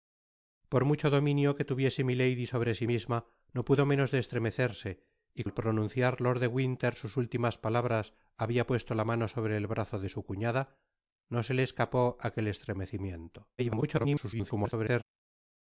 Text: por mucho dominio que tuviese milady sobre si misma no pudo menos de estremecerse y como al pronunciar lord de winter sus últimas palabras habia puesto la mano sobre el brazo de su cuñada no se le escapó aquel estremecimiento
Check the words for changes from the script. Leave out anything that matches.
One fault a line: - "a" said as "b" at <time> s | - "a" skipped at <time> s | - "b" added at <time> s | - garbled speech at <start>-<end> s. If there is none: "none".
- "como" skipped at 5.4 s
- garbled speech at 13.6-15.0 s